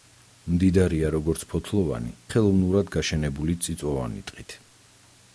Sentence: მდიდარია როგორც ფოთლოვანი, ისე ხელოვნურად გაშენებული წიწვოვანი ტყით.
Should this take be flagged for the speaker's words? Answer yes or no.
yes